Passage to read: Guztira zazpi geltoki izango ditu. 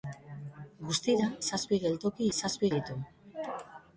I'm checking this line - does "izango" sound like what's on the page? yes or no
no